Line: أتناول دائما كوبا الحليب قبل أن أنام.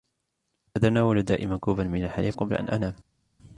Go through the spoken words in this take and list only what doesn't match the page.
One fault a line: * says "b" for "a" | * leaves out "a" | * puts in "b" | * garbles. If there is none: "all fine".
* puts in "من"